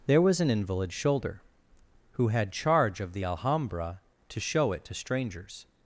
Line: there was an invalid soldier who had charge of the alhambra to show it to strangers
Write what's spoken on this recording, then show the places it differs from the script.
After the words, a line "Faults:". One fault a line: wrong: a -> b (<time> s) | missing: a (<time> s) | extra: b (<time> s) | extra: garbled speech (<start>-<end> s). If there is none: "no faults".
there was an invalid shoulder who had charge of the alhambra to show it to strangers
Faults:
wrong: soldier -> shoulder (0.9 s)